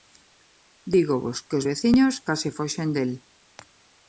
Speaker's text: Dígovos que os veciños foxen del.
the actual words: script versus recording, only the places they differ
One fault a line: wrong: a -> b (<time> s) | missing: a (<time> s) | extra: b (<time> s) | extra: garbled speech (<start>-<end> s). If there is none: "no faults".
extra: case (2.3 s)